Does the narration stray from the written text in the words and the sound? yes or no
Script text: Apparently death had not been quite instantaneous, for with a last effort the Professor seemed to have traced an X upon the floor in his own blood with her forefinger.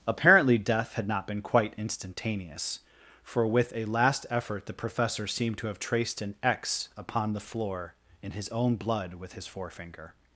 yes